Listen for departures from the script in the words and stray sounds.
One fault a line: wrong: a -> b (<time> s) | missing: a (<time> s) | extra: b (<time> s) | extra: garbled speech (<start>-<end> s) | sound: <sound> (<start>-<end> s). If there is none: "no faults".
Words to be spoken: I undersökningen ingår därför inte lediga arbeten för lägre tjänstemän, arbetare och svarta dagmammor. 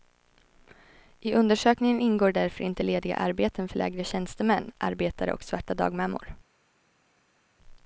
no faults